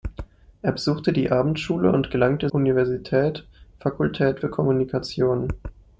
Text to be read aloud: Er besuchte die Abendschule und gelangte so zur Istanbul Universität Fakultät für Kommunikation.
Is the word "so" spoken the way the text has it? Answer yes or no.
no